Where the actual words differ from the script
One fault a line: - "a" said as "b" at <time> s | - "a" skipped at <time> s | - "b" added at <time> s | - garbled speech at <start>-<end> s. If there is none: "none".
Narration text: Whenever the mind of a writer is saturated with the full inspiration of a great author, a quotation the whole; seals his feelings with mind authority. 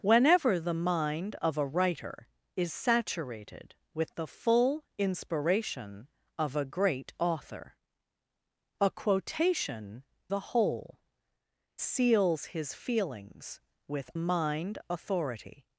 none